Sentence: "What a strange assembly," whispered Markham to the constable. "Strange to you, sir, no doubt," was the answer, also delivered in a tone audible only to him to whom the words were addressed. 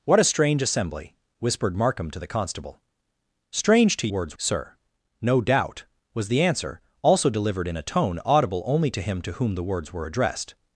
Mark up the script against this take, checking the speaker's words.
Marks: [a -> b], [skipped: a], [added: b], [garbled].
"What a strange assembly," whispered Markham to the constable. "Strange to [you, -> words] sir, no doubt," was the answer, also delivered in a tone audible only to him to whom the words were addressed.